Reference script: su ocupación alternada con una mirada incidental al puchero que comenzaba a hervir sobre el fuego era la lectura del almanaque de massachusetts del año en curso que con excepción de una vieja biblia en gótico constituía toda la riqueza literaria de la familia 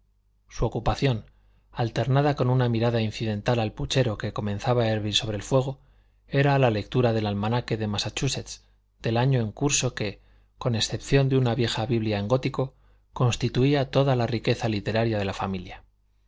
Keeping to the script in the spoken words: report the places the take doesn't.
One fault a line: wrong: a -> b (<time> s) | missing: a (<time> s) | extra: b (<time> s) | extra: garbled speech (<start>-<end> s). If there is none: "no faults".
no faults